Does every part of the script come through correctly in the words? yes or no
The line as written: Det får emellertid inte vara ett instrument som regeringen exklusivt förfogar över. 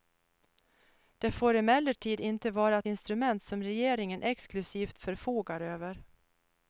yes